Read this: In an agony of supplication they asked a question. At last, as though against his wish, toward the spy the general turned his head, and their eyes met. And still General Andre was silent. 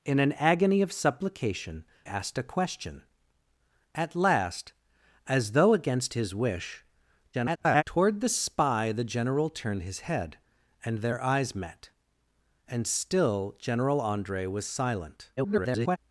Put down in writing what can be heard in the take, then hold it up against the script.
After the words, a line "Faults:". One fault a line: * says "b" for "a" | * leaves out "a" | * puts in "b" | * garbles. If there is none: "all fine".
In an agony of supplication asked a question. At last, as though against his wish, [garbled] toward the spy the general turned his head, and their eyes met. And still General Andre was silent. [garbled]
Faults:
* leaves out "they"
* garbles
* garbles